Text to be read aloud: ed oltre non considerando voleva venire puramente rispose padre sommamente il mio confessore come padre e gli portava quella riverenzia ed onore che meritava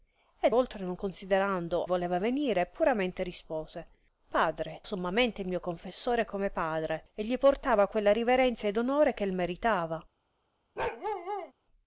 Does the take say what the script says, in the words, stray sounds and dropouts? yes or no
no